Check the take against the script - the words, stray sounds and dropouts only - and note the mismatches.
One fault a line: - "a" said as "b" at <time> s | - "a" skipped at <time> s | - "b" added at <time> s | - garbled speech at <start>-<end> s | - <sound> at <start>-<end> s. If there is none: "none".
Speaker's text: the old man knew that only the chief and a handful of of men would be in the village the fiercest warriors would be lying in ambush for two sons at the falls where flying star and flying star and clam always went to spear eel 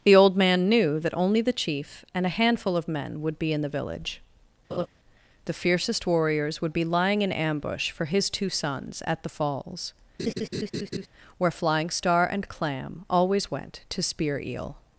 - "of" skipped at 2.9 s
- laugh at 4.7-4.9 s
- "his" added at 8.0 s
- laugh at 10.2-11.1 s
- "flying star and" skipped at 12.5 s